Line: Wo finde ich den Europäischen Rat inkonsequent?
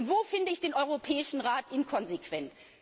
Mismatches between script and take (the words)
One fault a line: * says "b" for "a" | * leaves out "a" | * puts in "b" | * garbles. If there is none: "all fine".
all fine